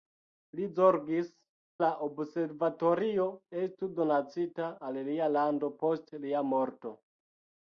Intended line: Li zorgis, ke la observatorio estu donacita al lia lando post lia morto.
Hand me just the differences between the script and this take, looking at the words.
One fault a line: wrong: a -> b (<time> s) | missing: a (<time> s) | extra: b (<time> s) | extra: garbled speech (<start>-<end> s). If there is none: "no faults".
missing: ke (1.3 s)